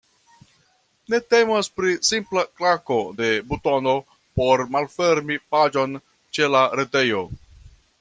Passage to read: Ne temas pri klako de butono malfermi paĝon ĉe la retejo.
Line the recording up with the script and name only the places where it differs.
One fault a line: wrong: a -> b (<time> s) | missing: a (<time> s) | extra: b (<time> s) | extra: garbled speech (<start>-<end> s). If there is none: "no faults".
extra: simpla (2.1 s)
extra: por (4.4 s)